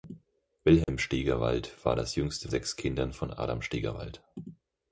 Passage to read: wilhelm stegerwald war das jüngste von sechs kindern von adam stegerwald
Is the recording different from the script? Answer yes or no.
yes